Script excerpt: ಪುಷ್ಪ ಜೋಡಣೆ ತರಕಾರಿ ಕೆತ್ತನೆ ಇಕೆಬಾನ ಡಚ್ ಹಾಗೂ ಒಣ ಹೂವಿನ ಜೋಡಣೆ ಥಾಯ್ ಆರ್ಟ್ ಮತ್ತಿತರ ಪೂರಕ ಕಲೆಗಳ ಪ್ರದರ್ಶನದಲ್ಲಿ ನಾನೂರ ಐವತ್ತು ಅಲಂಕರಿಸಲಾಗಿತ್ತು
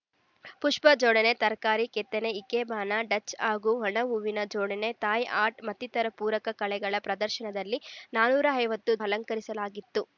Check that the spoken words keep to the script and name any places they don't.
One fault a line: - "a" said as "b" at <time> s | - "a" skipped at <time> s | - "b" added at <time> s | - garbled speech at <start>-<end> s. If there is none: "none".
none